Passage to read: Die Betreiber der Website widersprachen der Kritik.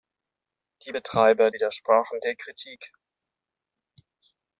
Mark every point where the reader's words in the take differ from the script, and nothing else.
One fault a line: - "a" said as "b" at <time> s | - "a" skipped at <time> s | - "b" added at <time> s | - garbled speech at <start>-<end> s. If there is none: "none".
- "der Website" skipped at 1.5 s